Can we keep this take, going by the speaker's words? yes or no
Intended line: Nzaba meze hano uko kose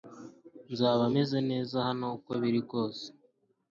no